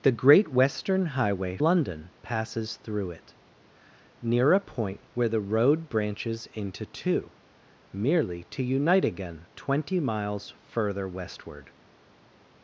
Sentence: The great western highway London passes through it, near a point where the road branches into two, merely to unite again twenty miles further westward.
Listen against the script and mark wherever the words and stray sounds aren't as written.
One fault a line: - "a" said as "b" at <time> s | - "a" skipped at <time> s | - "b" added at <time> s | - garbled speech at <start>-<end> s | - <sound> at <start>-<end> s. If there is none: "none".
none